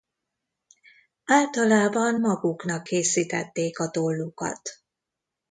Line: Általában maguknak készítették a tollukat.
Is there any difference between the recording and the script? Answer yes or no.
no